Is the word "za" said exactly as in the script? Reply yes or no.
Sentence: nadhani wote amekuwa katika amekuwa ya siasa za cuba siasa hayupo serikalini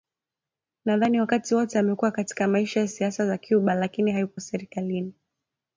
yes